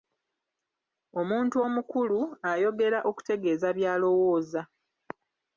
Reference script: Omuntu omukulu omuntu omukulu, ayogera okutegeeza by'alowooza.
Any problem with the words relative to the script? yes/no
yes